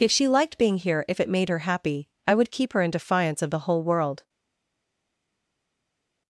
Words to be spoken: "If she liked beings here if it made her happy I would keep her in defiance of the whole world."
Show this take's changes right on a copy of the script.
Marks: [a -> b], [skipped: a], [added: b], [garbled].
"If she liked [beings -> being] here if it made her happy I would keep her in defiance of the whole world."